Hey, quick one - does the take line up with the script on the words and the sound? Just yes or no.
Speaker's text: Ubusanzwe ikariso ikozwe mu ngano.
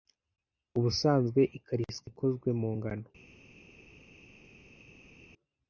yes